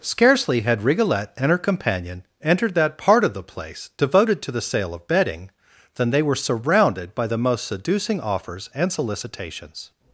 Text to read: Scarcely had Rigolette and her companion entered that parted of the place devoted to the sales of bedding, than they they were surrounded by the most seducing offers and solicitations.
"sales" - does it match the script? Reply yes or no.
no